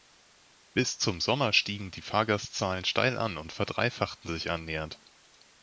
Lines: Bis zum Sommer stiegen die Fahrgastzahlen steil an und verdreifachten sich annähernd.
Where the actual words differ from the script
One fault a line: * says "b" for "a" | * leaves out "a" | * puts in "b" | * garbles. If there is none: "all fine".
all fine